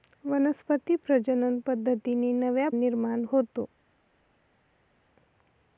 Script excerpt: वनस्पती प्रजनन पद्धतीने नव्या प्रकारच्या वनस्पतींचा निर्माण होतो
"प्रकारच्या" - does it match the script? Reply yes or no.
no